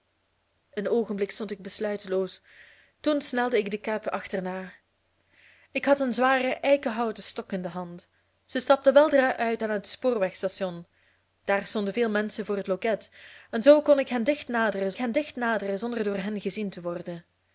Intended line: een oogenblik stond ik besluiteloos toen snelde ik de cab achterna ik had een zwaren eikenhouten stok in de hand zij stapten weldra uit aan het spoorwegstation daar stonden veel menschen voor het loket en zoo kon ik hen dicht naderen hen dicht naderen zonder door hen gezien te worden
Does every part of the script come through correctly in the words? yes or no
yes